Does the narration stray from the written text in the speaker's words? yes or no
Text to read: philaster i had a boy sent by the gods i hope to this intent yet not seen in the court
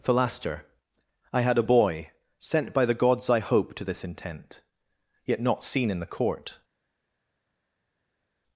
no